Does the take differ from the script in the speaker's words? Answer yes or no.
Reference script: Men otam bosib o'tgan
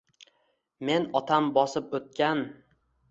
no